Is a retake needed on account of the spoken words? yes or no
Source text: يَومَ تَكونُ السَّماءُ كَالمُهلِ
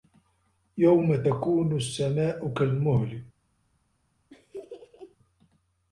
no